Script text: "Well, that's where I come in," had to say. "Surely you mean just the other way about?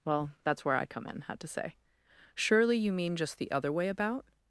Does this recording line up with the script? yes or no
yes